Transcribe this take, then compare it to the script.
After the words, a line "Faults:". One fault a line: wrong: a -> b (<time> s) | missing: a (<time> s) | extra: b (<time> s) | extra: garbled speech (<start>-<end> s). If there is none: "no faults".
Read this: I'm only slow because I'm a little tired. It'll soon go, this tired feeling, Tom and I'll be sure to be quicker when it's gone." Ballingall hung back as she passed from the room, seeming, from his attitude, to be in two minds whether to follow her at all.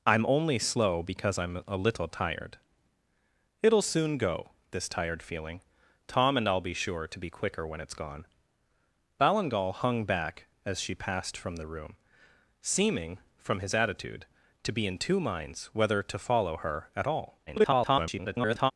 I'm only slow because I'm a little tired. It'll soon go, this tired feeling, Tom and I'll be sure to be quicker when it's gone." Ballingall hung back as she passed from the room, seeming, from his attitude, to be in two minds whether to follow her at all. [garbled]
Faults:
extra: garbled speech (17.5-18.7 s)